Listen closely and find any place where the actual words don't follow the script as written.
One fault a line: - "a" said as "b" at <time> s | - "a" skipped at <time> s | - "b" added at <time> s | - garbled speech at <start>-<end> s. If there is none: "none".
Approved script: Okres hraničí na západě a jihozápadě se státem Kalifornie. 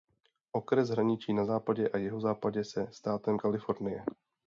none